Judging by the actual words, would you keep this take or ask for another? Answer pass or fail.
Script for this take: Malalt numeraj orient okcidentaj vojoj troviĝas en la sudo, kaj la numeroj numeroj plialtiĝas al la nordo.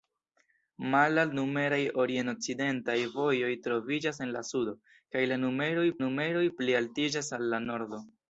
pass